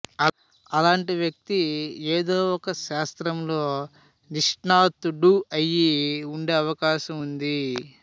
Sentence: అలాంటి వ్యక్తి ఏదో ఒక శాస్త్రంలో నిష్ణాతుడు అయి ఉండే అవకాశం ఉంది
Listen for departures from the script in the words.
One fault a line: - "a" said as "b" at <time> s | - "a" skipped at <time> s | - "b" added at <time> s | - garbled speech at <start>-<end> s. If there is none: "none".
none